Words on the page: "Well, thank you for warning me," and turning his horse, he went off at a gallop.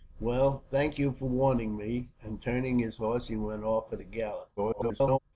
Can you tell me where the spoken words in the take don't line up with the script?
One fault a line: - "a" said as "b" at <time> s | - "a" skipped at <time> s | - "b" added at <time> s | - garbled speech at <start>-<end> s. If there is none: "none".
- garbled speech at 4.6-5.2 s